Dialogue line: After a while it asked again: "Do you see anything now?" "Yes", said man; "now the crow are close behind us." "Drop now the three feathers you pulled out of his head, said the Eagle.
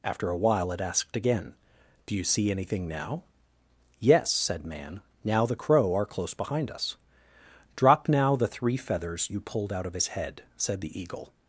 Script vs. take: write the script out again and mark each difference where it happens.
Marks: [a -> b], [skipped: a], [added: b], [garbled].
After a while it asked again: "Do you see anything now?" "Yes", said man; "now the crow are close behind us." "Drop now the three feathers you pulled out of his head, said the Eagle.